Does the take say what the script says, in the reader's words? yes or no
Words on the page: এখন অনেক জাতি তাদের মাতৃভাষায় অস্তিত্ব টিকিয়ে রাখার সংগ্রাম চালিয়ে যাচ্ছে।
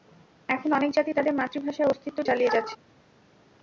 no